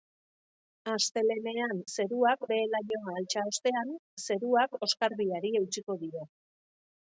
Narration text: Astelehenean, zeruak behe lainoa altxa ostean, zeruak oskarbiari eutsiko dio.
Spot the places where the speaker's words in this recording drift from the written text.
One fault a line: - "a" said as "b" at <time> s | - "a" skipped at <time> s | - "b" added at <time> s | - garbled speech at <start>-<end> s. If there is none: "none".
none